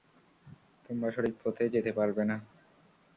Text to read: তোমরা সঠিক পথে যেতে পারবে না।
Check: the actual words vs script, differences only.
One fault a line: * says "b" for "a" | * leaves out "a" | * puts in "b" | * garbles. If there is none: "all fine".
all fine